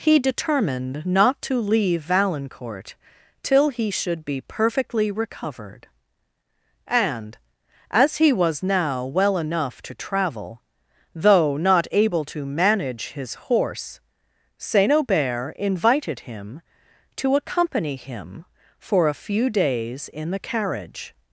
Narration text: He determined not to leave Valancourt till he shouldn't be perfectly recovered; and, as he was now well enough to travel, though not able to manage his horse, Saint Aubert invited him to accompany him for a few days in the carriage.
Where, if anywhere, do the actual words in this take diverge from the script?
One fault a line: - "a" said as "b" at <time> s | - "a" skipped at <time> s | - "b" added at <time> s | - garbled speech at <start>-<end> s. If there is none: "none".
- "shouldn't" said as "should" at 3.9 s